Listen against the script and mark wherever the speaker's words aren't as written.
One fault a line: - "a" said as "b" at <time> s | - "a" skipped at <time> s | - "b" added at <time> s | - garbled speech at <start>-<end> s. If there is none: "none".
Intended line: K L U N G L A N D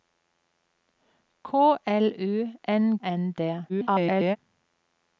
- "G L A" skipped at 3.0 s
- garbled speech at 3.7-4.4 s